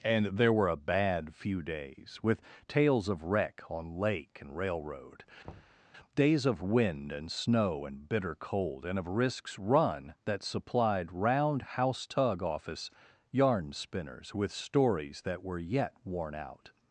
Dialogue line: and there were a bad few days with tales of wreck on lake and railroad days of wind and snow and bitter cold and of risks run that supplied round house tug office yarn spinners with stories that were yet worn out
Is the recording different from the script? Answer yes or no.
no